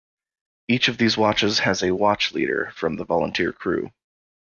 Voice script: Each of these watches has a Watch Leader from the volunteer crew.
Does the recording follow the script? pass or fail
pass